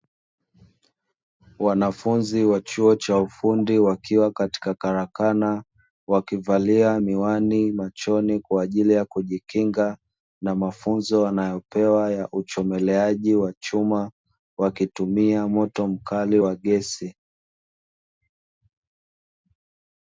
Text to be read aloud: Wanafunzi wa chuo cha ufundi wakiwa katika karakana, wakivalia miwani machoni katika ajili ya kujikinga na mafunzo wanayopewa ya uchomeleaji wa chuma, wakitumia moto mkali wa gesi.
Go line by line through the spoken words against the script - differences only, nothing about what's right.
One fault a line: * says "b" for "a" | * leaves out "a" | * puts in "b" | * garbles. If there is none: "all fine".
* says "kwa" for "katika"